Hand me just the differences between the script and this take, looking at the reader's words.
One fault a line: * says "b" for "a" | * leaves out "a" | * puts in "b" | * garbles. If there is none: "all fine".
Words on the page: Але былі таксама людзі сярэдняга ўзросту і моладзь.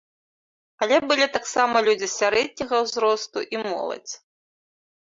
all fine